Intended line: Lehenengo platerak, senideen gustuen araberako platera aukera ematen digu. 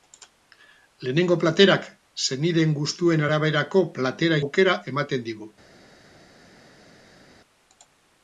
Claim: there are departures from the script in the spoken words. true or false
false